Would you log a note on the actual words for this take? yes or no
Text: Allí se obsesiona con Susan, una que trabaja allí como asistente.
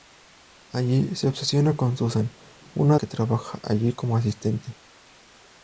no